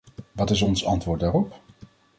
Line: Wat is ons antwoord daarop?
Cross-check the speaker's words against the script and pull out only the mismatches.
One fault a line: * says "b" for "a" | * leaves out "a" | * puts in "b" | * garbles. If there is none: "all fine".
all fine